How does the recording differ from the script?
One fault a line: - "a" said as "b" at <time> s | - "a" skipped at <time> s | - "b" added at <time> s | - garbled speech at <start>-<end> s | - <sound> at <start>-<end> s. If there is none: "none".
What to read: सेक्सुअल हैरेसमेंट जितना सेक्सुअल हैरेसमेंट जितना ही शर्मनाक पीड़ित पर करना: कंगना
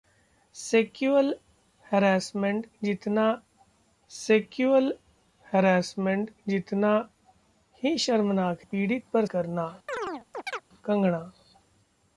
- chirp at 9.9-10.6 s